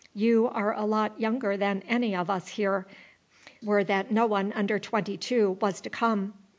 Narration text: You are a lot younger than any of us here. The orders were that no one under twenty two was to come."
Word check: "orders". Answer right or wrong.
wrong